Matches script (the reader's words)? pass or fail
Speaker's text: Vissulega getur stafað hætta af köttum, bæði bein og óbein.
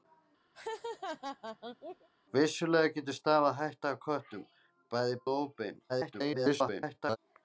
fail